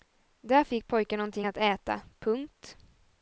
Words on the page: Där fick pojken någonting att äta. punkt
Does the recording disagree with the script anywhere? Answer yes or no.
no